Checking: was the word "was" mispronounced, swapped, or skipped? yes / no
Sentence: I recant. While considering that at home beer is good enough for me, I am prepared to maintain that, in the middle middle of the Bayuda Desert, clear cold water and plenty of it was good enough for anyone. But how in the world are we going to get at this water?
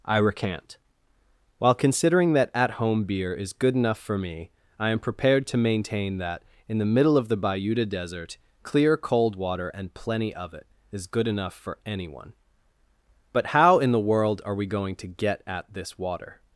yes